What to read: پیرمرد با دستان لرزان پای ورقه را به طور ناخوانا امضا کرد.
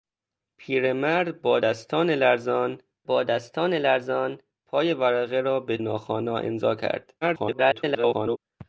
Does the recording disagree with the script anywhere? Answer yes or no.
yes